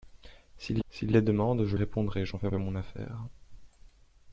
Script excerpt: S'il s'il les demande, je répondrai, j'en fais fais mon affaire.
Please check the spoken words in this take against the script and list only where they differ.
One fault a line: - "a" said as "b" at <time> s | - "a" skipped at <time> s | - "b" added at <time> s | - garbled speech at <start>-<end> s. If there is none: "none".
none